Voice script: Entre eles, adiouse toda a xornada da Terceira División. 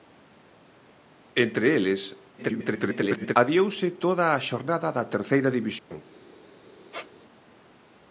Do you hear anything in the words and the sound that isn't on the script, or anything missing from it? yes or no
yes